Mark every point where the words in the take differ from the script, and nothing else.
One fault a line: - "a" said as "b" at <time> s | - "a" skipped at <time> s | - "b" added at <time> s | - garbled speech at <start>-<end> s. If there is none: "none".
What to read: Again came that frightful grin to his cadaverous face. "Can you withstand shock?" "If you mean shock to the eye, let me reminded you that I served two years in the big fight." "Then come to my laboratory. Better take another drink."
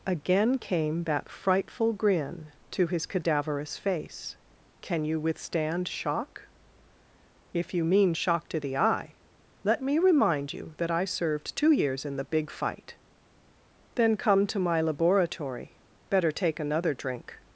- "reminded" said as "remind" at 10.0 s